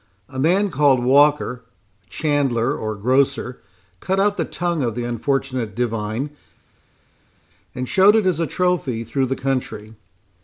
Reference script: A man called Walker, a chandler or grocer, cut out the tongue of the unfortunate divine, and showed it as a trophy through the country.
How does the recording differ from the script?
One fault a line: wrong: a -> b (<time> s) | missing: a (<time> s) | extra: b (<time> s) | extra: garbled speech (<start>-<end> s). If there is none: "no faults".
no faults